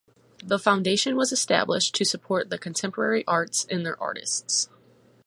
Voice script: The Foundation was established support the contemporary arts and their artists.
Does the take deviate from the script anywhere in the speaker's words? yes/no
yes